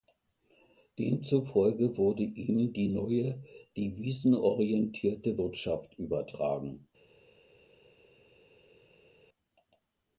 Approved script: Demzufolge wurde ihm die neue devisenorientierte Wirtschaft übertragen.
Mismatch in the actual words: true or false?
false